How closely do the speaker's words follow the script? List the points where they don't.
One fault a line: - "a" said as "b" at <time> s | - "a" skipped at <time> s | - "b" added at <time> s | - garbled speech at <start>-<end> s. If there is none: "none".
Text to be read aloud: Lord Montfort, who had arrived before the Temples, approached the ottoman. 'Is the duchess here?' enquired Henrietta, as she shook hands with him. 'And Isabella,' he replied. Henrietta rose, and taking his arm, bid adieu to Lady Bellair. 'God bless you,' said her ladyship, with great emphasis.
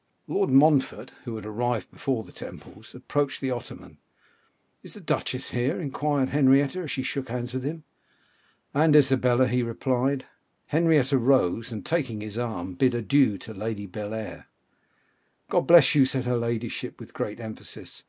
none